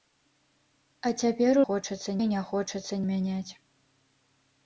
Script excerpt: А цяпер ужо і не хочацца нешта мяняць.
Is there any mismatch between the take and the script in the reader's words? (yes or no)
yes